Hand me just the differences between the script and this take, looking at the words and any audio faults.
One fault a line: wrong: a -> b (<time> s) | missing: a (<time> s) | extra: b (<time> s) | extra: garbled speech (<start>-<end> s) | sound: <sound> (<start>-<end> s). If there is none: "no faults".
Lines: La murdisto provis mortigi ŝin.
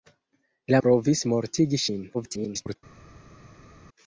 missing: murdisto (0.8 s)
extra: garbled speech (2.1-2.8 s)